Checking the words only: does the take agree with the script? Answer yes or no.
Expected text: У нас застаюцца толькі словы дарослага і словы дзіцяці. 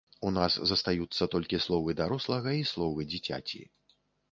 yes